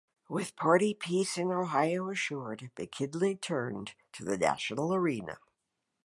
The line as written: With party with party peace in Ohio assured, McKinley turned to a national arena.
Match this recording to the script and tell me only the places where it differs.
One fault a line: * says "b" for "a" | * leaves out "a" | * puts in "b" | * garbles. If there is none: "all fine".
* leaves out "with party"
* says "the" for "a"